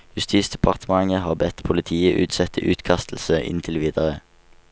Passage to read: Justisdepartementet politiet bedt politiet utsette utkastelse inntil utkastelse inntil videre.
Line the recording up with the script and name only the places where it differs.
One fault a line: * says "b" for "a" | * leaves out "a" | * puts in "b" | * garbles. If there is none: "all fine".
* says "har" for "politiet"
* leaves out "utkastelse inntil"